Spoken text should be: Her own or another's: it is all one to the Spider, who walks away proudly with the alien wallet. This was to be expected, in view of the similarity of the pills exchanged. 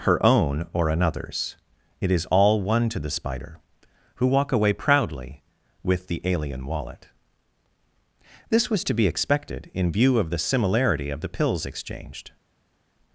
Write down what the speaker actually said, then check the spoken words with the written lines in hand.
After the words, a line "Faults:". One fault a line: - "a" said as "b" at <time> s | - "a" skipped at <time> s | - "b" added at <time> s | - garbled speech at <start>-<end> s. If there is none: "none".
Her own or another's: it is all one to the Spider, who walk away proudly with the alien wallet. This was to be expected, in view of the similarity of the pills exchanged.
Faults:
- "walks" said as "walk" at 4.2 s